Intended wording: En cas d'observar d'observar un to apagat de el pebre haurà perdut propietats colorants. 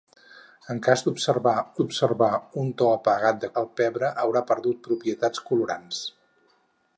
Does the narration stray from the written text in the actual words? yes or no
no